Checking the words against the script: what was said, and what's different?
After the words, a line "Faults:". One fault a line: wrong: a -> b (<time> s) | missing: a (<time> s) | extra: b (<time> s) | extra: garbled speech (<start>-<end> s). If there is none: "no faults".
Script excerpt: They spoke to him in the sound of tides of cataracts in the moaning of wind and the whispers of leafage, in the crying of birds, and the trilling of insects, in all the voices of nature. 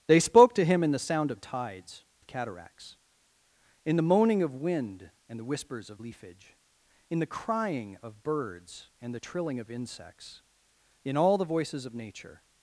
They spoke to him in the sound of tides of cataracts in the moaning of wind and the whispers of leafage, in the crying of birds, and the trilling of insects, in all the voices of nature.
Faults:
no faults